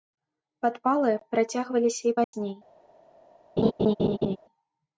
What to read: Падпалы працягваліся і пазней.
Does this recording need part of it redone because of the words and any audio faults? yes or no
yes